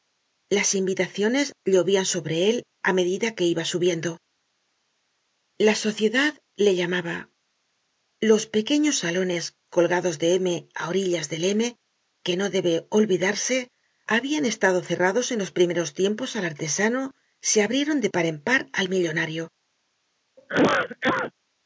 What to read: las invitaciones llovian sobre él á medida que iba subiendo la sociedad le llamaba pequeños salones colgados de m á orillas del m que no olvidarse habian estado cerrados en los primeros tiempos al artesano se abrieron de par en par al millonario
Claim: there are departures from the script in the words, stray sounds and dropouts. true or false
true